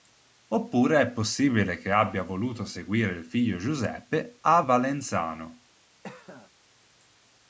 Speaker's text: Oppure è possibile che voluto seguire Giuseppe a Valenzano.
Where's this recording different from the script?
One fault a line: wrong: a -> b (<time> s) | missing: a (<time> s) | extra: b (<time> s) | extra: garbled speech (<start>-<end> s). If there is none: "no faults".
extra: abbia (1.9 s)
extra: il figlio (3.1 s)